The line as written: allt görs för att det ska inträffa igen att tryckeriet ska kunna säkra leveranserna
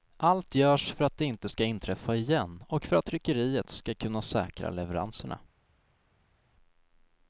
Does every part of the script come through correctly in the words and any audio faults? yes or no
no